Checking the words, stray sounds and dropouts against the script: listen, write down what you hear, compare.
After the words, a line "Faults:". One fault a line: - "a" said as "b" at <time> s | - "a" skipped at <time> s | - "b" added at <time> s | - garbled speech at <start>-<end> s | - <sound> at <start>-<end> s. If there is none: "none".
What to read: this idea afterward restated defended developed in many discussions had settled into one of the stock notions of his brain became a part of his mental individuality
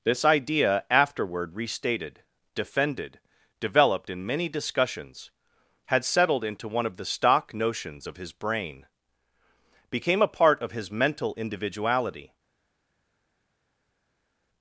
this idea afterward restated defended developed in many discussions had settled into one of the stock notions of his brain became a part of his mental individuality
Faults:
none